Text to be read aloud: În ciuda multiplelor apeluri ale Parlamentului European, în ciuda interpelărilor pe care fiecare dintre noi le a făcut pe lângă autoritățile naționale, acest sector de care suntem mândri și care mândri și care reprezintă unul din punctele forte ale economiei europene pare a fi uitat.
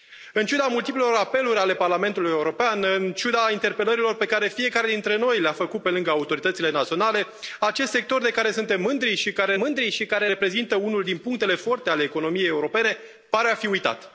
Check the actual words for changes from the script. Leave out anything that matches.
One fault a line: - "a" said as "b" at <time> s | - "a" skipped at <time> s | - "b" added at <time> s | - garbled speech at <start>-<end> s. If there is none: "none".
none